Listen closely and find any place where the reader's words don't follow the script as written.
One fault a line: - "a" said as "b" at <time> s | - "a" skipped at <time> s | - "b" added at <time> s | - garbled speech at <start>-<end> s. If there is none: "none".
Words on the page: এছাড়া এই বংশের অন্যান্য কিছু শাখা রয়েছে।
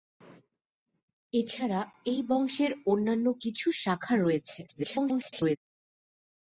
- garbled speech at 4.7-5.6 s